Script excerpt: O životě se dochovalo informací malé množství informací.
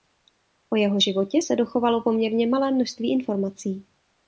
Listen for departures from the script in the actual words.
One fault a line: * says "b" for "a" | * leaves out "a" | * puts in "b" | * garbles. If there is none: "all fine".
* puts in "jeho"
* says "poměrně" for "informací"